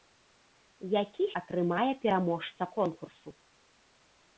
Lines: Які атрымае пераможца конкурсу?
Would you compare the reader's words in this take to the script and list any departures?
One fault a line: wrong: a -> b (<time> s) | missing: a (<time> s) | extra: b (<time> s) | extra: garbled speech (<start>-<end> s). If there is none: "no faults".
no faults